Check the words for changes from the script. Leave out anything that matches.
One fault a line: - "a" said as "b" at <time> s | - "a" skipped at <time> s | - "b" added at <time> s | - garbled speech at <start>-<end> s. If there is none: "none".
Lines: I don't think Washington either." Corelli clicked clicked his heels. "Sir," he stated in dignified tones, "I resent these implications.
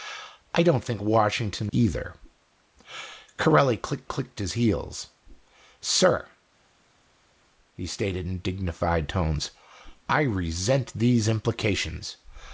none